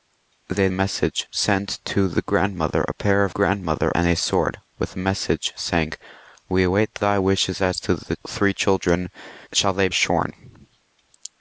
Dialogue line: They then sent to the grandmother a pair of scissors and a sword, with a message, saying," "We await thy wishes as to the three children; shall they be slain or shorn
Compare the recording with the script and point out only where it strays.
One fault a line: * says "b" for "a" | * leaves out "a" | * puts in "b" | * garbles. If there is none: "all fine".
* says "message" for "then"
* says "grandmother" for "scissors"
* leaves out "be slain or"